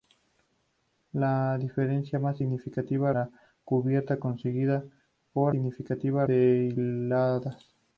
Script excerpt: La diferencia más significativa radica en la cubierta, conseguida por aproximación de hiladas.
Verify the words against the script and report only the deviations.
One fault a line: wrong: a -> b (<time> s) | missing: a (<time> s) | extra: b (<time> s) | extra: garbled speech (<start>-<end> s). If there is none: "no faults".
missing: radica en (3.1 s)
wrong: aproximación -> significativa (5.5 s)